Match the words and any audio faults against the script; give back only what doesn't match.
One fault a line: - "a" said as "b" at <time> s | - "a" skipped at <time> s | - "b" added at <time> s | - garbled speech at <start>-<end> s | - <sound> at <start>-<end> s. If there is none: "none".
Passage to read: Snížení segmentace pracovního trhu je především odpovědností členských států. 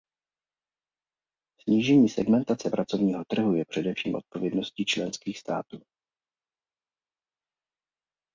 none